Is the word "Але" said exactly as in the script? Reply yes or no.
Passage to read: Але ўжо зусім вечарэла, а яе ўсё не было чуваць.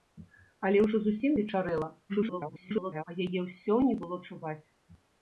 yes